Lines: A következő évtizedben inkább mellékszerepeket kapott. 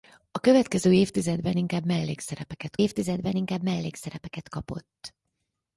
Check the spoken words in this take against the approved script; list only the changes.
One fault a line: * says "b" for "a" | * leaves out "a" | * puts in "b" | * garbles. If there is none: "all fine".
* puts in "évtizedben inkább mellékszerepeket"